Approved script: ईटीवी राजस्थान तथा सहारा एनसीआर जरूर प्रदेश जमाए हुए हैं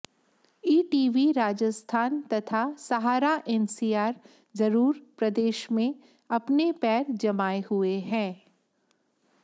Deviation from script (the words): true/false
true